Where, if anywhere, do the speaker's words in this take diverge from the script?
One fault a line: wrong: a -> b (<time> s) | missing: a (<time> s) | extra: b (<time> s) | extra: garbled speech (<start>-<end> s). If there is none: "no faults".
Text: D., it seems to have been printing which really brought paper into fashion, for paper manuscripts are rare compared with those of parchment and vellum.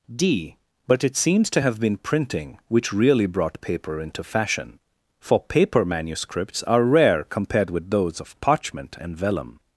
extra: but (0.9 s)